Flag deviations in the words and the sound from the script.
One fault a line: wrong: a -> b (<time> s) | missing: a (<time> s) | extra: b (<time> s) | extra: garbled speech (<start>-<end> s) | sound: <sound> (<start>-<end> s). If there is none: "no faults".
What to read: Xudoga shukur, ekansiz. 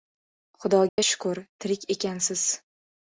sound: dropout (0.9-1.0 s)
extra: tirik (1.6 s)